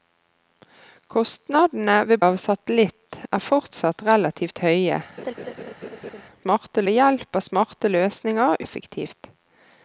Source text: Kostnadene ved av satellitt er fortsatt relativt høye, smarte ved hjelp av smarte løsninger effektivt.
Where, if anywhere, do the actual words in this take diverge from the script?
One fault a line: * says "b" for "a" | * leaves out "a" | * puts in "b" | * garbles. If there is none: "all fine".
all fine